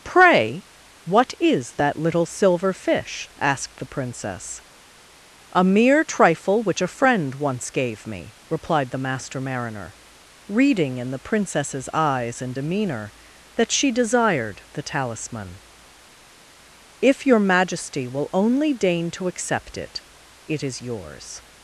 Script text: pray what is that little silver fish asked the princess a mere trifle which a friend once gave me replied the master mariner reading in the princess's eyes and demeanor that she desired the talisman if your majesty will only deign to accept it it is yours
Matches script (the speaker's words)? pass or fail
pass